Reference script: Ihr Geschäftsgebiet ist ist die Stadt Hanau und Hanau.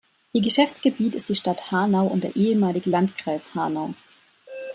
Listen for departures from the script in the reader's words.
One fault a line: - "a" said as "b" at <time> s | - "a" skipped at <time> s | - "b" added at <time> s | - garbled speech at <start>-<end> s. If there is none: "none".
- "ist" skipped at 1.3 s
- "der ehemalige Landkreis" added at 2.2 s